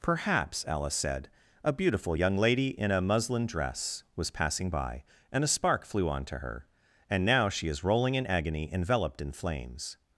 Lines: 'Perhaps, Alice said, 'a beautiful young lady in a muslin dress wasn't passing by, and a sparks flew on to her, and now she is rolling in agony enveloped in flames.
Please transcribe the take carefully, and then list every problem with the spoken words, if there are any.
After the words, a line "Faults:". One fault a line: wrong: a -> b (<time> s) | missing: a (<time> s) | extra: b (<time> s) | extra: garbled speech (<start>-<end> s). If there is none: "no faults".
'Perhaps, Alice said, 'a beautiful young lady in a muslin dress was passing by, and a spark flew on to her, and now she is rolling in agony enveloped in flames.
Faults:
wrong: wasn't -> was (4.1 s)
wrong: sparks -> spark (5.5 s)